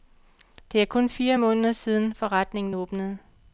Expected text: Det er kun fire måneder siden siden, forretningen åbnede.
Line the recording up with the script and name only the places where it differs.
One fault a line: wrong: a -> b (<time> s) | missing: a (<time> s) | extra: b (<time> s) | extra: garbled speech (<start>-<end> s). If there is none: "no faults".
missing: siden (2.1 s)